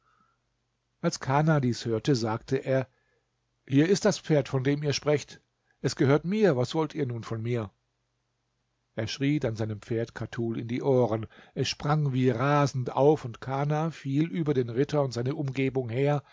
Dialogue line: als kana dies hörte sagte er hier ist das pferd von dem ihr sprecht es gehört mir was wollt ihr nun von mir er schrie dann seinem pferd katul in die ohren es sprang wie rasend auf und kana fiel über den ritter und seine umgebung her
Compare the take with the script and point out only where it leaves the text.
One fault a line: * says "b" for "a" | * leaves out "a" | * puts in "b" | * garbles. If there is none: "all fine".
all fine